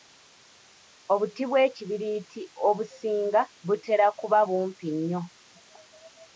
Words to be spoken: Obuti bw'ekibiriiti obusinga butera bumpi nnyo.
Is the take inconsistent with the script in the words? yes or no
yes